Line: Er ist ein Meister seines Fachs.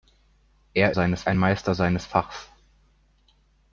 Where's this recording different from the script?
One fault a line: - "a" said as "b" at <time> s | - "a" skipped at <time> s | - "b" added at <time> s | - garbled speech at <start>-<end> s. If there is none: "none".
- "ist" said as "seines" at 0.9 s